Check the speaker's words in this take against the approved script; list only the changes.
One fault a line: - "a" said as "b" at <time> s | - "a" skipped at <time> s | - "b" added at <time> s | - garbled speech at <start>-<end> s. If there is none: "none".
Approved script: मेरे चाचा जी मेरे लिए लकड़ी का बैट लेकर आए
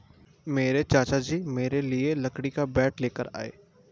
none